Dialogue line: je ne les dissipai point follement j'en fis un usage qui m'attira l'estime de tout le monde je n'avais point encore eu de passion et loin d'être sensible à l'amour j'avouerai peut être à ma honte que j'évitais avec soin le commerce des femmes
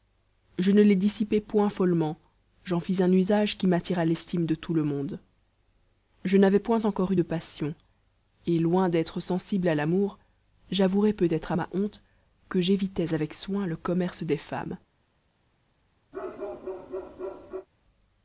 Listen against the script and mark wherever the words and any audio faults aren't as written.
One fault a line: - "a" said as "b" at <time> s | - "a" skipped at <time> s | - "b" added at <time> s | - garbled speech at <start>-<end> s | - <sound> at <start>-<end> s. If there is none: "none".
- bark at 16.1-17.7 s